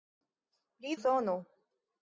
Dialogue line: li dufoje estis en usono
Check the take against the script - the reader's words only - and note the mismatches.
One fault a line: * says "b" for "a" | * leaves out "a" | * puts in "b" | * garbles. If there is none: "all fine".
* leaves out "dufoje estis en"